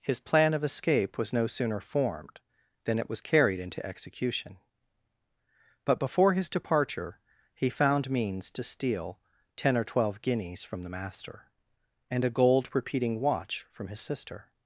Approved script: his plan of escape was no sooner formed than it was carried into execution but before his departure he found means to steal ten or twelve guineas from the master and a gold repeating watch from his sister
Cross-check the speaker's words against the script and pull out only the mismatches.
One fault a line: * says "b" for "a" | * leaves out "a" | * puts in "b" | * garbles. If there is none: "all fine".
all fine